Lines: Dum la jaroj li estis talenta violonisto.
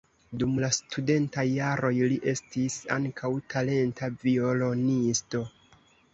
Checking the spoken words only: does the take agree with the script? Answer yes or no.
no